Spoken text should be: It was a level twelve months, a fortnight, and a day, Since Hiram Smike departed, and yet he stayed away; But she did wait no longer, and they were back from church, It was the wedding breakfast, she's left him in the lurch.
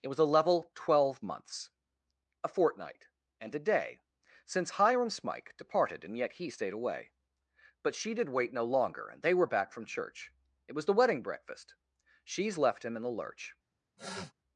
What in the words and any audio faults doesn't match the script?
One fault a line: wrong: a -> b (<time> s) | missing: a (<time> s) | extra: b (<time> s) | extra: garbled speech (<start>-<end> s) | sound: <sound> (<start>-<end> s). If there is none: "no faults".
sound: sniff (14.0-14.3 s)